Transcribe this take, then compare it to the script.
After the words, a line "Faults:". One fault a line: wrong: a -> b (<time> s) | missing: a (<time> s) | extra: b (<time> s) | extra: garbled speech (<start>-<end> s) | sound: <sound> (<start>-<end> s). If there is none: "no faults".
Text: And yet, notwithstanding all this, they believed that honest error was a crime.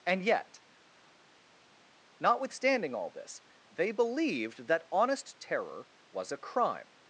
And yet, notwithstanding all this, they believed that honest terror was a crime.
Faults:
wrong: error -> terror (5.4 s)